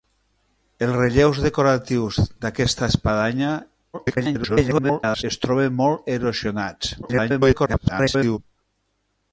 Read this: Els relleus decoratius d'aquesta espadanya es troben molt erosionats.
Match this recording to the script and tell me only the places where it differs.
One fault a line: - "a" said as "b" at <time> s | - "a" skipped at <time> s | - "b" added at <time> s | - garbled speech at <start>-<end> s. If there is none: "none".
- garbled speech at 3.9-5.2 s
- garbled speech at 7.0-8.4 s